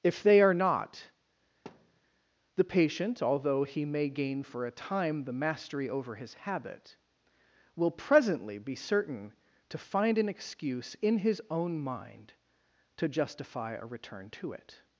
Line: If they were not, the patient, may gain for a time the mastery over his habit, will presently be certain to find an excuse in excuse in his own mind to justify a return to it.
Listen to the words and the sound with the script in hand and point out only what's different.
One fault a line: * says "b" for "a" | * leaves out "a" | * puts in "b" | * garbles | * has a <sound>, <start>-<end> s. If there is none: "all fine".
* says "are" for "were"
* has a thud, 1.7-2.0 s
* puts in "although he"
* leaves out "excuse in"